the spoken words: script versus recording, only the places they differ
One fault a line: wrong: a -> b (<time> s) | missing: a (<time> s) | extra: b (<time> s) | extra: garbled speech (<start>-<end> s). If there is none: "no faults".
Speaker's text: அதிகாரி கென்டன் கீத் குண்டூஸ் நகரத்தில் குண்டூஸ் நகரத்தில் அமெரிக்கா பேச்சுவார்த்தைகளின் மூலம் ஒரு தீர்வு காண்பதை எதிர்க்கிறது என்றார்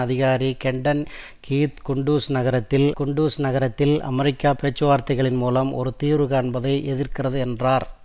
no faults